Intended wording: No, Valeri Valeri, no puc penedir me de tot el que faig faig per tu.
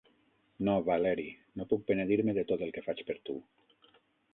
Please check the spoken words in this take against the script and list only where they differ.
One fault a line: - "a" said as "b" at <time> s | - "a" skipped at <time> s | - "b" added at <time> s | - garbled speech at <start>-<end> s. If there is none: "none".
- "Valeri" skipped at 1.3 s
- "faig" skipped at 3.1 s